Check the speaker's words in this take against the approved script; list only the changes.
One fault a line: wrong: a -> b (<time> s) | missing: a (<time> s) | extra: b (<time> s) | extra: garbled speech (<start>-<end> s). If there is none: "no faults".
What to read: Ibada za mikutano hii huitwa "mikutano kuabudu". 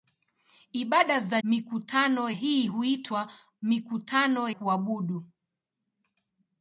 no faults